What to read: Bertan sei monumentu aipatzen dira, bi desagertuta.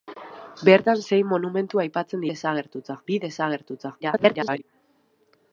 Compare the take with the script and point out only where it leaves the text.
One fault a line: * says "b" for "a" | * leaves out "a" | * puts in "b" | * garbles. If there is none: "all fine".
* says "desagertuta" for "dira"
* garbles